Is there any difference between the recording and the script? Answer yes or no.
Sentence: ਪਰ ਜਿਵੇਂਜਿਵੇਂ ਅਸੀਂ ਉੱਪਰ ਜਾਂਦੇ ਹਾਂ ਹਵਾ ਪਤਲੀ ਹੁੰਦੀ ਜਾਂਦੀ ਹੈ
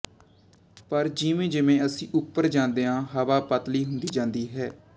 no